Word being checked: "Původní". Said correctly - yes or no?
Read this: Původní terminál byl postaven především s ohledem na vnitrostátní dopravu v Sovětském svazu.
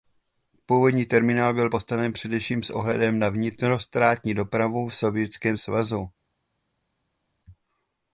yes